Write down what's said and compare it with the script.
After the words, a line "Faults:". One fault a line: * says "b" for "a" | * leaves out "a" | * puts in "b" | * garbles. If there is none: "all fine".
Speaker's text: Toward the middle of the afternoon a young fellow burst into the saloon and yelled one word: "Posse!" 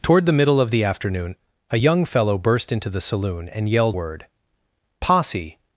Toward the middle of the afternoon a young fellow burst into the saloon and yelled word: "Posse!"
Faults:
* leaves out "one"